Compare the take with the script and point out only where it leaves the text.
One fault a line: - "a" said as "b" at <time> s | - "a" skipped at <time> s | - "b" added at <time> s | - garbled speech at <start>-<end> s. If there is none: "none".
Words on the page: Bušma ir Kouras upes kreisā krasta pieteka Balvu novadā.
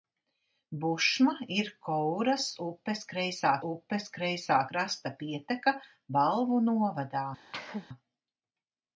- "upes kreisā" added at 3.7 s